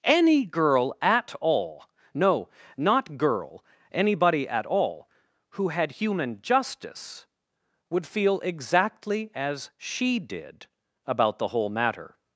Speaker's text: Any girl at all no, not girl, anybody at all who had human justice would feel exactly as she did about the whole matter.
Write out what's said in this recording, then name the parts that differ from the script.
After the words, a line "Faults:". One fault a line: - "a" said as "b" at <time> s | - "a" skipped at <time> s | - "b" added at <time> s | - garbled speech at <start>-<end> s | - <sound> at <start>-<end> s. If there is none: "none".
Any girl at all no, not girl, anybody at all who had human justice would feel exactly as she did about the whole matter.
Faults:
none